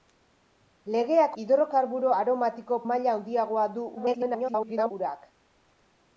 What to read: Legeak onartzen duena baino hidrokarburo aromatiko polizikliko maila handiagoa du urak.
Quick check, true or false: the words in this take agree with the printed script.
false